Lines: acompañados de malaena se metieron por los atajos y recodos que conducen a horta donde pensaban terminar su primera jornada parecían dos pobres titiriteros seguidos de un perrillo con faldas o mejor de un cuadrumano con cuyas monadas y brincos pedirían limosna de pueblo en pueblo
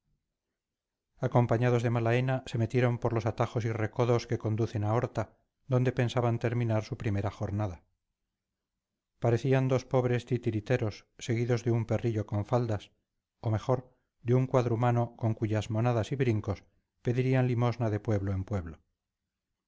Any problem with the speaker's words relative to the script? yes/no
no